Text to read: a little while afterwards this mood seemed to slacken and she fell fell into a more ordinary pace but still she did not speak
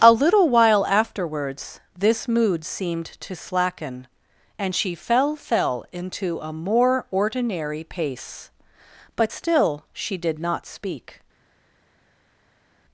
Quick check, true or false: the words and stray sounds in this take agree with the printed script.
true